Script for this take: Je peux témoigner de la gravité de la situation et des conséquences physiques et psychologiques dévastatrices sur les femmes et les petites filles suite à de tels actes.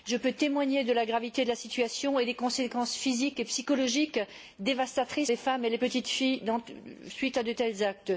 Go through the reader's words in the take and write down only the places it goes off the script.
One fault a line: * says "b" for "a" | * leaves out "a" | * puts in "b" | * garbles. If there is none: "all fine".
* leaves out "sur"